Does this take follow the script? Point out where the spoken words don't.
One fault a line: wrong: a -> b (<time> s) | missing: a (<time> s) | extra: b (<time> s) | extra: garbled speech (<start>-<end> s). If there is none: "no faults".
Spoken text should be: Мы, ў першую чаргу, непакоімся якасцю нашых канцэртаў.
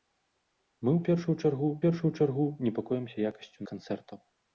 extra: першую чаргу (1.8 s)
missing: нашых (3.6 s)